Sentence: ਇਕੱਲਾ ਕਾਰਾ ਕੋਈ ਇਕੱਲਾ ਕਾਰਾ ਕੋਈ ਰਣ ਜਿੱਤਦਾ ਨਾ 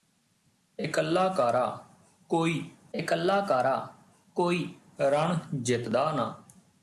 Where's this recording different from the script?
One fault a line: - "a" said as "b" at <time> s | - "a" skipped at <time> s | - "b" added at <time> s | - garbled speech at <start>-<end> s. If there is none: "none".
none